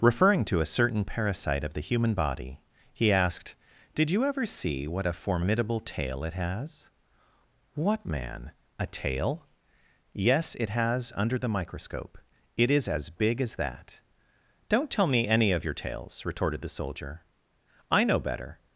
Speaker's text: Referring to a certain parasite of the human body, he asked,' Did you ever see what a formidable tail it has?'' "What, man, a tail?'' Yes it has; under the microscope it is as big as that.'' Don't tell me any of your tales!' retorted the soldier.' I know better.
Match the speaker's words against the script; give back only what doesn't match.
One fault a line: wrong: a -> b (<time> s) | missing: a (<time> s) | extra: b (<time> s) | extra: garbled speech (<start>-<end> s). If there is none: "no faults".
no faults